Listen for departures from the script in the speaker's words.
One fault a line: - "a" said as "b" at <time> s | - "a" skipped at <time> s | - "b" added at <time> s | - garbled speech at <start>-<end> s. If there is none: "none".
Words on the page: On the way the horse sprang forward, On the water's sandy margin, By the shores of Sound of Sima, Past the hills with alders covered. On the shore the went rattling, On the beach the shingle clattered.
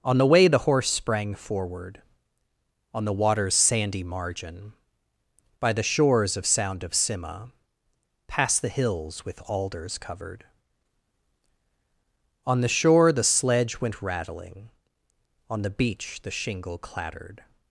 - "sledge" added at 13.2 s